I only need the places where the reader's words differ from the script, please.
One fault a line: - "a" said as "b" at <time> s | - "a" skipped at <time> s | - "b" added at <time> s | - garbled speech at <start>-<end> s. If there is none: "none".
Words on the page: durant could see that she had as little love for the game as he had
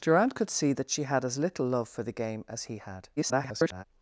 - garbled speech at 3.2-3.8 s